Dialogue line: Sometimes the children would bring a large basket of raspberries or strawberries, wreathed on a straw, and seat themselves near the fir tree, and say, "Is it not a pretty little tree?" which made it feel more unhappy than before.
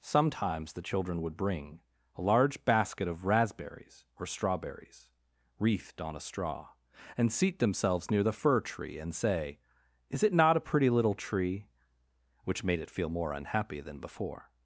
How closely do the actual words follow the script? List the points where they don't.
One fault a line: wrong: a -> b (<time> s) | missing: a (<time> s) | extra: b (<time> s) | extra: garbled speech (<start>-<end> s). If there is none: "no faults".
no faults